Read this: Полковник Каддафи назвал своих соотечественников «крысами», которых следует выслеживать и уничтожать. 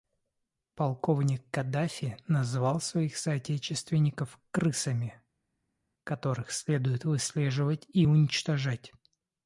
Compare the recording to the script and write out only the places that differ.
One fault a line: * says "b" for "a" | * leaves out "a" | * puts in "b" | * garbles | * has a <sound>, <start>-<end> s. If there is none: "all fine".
all fine